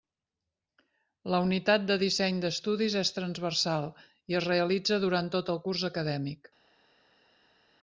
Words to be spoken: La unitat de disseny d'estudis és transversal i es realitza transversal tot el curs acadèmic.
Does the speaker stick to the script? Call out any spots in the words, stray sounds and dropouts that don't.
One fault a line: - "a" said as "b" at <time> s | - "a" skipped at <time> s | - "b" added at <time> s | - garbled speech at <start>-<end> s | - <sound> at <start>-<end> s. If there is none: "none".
- "transversal" said as "durant" at 5.1 s